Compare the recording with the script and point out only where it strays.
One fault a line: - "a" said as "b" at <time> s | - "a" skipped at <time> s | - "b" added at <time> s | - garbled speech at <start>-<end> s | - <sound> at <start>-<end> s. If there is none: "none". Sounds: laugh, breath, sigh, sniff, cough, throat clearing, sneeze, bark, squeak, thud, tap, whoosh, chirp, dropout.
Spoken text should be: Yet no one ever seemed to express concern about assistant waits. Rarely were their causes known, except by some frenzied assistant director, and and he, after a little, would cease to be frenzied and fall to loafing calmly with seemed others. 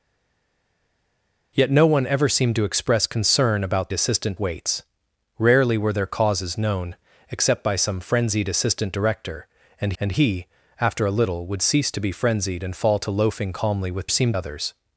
none